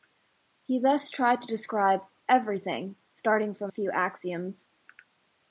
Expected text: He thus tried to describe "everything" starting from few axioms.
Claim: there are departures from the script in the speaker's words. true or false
false